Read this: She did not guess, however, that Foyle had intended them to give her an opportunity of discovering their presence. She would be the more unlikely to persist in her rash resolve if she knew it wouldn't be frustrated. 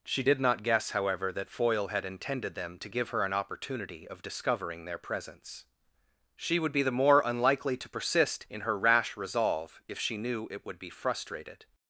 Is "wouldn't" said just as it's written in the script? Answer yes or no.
no